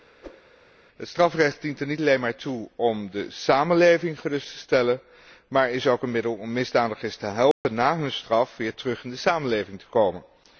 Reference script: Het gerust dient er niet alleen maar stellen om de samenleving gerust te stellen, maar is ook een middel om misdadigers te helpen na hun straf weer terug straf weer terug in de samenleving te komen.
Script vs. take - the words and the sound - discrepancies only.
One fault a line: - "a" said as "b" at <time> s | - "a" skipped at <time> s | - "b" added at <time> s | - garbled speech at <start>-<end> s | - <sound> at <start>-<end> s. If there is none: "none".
- whoosh at 0.2-0.5 s
- "gerust" said as "strafrecht" at 1.1 s
- "stellen" said as "toe" at 2.3 s
- dropout at 7.5-7.6 s
- "straf weer terug" skipped at 9.0 s